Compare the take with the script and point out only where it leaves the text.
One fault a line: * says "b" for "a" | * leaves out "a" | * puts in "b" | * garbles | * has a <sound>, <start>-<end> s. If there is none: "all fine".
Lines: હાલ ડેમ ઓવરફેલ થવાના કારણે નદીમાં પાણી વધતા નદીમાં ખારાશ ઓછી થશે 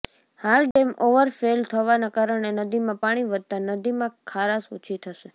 * has a dropout, 0.7-0.8 s